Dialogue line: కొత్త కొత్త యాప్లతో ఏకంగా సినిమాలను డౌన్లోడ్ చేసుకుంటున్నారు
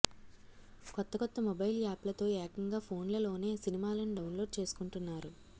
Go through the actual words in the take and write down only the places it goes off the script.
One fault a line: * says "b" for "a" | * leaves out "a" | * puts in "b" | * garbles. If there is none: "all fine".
* puts in "మొబైల్"
* puts in "ఫోన్లలోనే"